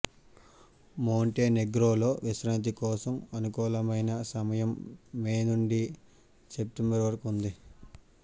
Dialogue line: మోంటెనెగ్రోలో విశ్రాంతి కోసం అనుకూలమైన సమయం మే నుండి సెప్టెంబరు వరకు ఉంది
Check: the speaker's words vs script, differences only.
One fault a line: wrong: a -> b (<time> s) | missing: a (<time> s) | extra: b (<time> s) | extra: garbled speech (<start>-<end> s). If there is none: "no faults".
no faults